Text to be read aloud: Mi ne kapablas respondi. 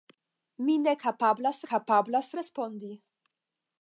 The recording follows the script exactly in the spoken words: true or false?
false